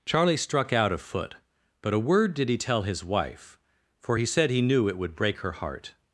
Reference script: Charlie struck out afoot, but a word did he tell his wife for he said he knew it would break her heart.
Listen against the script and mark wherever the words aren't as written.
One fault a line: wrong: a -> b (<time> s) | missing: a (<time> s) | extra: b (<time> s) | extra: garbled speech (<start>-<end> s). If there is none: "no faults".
no faults